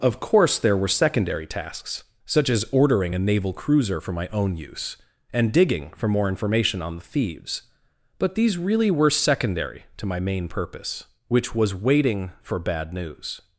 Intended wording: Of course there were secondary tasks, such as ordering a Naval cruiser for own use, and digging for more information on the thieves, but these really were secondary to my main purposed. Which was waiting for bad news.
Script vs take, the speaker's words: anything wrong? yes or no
yes